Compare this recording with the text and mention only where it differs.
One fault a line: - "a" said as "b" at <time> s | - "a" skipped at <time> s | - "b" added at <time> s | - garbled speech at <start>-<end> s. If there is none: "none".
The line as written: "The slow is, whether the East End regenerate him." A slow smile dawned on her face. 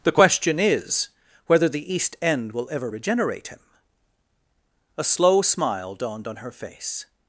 - "slow" said as "question" at 0.1 s
- "will ever" added at 2.5 s